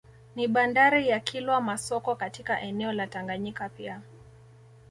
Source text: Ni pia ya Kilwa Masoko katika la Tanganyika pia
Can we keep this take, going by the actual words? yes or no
no